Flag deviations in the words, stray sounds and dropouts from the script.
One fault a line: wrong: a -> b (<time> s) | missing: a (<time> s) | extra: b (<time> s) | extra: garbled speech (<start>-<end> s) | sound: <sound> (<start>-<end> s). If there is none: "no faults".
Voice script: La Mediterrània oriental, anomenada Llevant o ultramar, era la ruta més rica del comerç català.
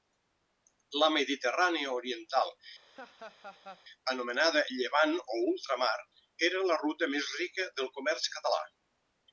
sound: laugh (2.9-3.8 s)